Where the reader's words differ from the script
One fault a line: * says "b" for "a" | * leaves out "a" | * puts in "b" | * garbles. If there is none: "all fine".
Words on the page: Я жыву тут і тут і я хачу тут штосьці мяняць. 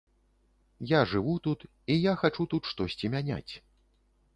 * leaves out "тут і"